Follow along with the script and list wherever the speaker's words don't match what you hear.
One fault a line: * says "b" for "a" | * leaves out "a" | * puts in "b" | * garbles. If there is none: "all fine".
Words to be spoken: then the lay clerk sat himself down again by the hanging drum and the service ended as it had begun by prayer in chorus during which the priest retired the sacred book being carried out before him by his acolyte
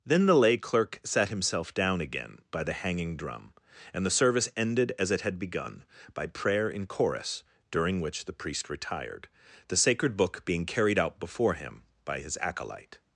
all fine